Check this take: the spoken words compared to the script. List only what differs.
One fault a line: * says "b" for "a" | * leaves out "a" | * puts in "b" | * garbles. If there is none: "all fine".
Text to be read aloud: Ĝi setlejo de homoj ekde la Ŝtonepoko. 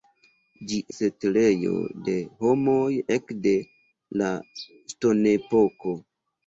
all fine